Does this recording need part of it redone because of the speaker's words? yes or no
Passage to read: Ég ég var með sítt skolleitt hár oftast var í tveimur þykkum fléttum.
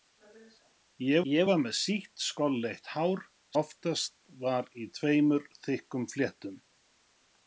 no